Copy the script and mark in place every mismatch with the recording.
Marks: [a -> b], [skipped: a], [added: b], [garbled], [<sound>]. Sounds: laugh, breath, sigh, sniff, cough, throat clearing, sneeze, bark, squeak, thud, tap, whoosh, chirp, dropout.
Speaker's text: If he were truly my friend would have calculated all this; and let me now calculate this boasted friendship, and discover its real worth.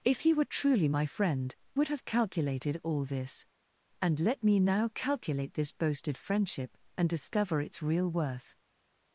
If he were truly my friend would have calculated all this; and let me now calculate this boasted friendship, and discover its real worth.